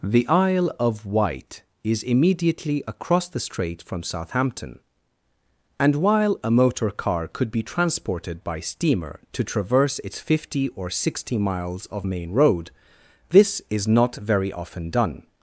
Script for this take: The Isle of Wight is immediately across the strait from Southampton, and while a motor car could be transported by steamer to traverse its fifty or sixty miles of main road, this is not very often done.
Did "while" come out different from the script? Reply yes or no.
no